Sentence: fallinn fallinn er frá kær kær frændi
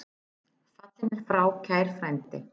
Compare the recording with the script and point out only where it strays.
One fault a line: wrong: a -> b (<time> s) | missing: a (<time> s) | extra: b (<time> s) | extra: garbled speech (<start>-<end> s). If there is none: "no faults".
missing: fallinn (1.1 s)
missing: kær (1.9 s)